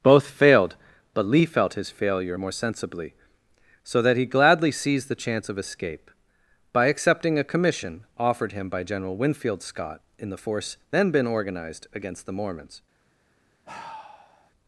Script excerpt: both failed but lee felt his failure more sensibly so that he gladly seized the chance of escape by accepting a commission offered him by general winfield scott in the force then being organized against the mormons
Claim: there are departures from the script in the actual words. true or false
true